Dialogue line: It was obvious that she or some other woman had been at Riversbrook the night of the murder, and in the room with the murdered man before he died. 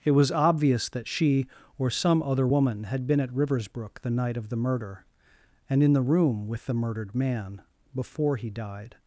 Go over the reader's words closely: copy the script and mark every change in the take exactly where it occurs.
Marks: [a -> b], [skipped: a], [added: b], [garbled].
It was obvious that she or some other woman had been at Riversbrook the night of the murder, and in the room with the murdered man before he died.